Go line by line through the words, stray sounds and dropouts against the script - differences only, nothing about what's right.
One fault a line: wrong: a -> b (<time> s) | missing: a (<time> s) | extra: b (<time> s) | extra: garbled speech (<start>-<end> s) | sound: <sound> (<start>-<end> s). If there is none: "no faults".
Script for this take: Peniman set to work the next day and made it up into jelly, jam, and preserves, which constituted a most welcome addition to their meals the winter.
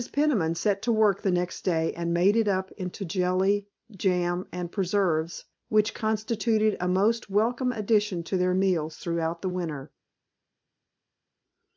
extra: throughout (9.0 s)